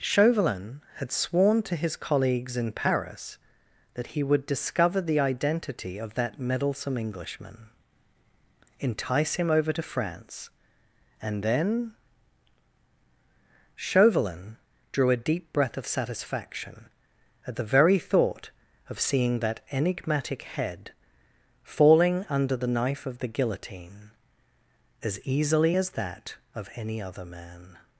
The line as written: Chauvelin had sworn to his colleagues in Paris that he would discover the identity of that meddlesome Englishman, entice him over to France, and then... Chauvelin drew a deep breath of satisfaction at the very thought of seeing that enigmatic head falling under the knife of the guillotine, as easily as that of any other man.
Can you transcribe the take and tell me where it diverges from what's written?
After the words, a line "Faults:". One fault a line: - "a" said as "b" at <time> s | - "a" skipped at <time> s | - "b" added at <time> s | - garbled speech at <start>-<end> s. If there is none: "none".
Chauvelin had sworn to his colleagues in Paris that he would discover the identity of that meddlesome Englishman, entice him over to France, and then... Chauvelin drew a deep breath of satisfaction at the very thought of seeing that enigmatic head falling under the knife of the guillotine, as easily as that of any other man.
Faults:
none